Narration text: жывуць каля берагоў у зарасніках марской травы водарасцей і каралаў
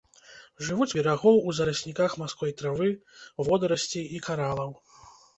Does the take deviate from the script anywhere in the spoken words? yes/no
yes